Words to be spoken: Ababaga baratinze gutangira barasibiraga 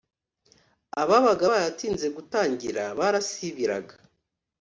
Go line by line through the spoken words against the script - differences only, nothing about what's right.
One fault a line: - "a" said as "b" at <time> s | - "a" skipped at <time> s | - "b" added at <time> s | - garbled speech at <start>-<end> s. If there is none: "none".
none